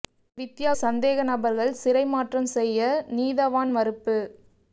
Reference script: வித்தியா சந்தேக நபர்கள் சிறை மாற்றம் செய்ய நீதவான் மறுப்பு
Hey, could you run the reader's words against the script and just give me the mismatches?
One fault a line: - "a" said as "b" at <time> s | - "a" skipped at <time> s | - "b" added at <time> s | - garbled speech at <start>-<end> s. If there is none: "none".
none